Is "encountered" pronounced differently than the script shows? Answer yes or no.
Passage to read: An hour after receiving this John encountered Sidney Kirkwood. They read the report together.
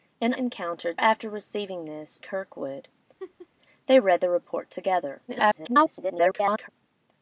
yes